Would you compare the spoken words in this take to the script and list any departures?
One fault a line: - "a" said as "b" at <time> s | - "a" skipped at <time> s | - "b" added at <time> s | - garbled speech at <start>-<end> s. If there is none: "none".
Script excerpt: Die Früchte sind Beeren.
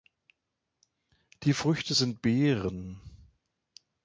none